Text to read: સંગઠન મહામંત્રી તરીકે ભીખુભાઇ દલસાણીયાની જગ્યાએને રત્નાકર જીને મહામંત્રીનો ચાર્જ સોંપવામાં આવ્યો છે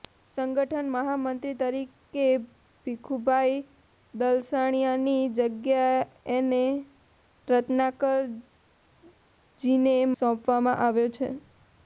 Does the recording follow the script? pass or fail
fail